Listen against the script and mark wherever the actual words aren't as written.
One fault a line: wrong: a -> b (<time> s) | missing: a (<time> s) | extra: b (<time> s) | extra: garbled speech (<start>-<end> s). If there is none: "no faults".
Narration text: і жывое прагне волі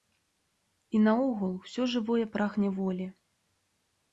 extra: наогул усё (1.1 s)